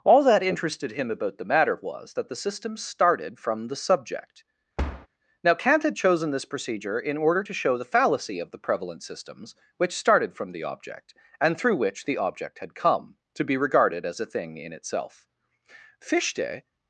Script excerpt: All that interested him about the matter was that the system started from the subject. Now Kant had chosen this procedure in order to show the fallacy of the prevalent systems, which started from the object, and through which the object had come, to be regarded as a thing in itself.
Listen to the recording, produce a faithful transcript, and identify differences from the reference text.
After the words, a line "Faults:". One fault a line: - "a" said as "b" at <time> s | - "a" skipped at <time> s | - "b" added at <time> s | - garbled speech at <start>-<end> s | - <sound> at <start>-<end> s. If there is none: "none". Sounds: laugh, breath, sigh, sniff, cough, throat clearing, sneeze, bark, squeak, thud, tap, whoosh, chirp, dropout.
All that interested him about the matter was that the system started from the subject. Now Kant had chosen this procedure in order to show the fallacy of the prevalent systems, which started from the object, and through which the object had come, to be regarded as a thing in itself. Fichte
Faults:
- thud at 4.8-5.1 s
- "Fichte" added at 16.0 s